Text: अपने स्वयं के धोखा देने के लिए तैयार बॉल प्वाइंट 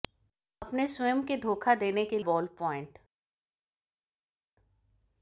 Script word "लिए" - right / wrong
wrong